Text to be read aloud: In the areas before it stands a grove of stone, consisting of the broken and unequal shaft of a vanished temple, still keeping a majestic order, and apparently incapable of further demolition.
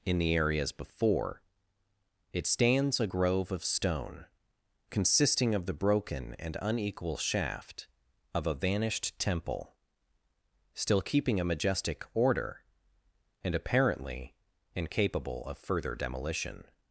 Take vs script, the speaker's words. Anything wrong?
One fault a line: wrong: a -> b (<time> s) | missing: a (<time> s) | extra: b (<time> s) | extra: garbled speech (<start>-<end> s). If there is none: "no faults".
no faults